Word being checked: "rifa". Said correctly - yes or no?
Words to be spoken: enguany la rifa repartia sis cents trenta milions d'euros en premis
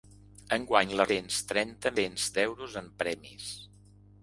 no